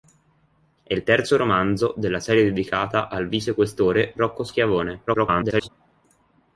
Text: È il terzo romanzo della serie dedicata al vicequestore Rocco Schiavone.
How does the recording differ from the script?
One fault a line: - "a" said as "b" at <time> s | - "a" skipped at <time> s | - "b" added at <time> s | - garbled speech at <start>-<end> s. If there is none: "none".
- garbled speech at 5.1-5.7 s